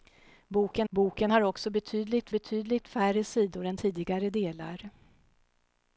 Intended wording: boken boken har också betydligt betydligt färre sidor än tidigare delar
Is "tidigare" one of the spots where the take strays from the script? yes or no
no